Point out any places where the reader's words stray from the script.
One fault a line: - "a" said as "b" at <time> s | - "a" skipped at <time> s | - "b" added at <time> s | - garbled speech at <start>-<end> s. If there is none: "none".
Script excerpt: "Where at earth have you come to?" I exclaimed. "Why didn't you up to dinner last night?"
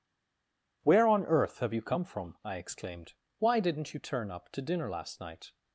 - "at" said as "on" at 1.1 s
- "to" said as "from" at 2.0 s
- "turn" added at 4.0 s